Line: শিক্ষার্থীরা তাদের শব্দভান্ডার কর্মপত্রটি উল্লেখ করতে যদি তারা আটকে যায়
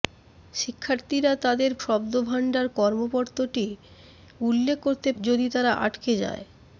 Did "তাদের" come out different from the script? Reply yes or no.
no